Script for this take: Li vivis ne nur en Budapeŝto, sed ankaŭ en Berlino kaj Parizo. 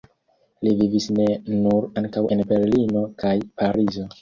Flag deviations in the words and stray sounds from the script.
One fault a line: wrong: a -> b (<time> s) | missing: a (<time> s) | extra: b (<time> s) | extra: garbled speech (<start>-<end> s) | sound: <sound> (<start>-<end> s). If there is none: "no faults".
missing: en Budapeŝto sed (1.9 s)